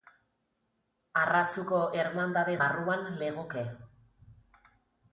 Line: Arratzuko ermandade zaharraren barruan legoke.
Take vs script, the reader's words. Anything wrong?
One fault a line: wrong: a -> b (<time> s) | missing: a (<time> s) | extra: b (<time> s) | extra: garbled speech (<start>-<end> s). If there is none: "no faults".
missing: zaharraren (2.6 s)